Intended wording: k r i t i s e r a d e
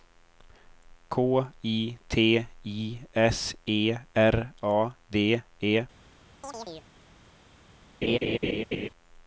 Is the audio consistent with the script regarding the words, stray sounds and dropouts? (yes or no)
no